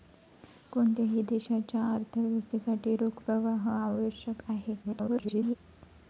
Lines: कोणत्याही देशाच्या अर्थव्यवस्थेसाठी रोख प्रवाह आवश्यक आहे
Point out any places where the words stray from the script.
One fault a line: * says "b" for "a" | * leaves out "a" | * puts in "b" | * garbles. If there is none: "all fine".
* garbles